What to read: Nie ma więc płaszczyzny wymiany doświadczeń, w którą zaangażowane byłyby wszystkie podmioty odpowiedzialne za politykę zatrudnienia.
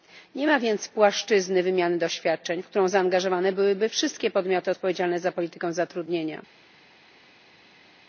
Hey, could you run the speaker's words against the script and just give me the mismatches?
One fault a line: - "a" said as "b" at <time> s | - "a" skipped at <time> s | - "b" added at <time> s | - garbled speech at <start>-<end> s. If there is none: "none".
none